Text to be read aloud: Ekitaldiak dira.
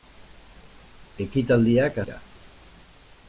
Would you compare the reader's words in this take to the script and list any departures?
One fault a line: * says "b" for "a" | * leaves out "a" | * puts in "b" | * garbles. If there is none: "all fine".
all fine